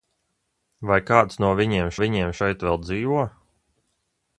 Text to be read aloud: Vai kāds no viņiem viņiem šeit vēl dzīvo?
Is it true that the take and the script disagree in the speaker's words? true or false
false